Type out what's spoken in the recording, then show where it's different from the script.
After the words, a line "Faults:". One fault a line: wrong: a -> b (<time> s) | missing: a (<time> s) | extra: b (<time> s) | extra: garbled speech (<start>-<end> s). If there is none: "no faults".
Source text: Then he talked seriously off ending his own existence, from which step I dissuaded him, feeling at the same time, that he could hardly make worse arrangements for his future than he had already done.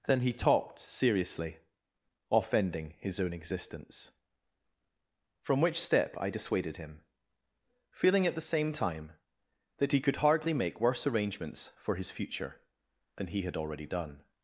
Then he talked seriously off ending his own existence, from which step I dissuaded him, feeling at the same time, that he could hardly make worse arrangements for his future than he had already done.
Faults:
no faults